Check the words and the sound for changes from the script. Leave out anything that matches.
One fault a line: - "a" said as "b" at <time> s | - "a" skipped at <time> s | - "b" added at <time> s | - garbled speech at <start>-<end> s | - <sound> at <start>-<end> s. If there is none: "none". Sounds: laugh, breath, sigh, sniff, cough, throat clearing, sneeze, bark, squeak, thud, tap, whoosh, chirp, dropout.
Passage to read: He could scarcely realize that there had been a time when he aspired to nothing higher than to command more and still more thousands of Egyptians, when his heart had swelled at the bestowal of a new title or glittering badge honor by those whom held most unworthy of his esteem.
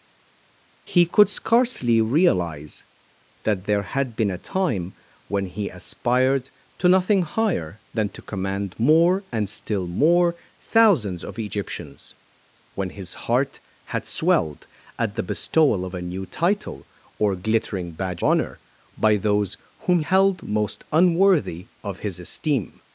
none